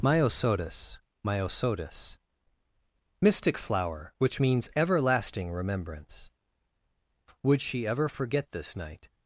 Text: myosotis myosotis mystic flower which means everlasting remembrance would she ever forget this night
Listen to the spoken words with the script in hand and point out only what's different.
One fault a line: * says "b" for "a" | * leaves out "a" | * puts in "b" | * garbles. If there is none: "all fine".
all fine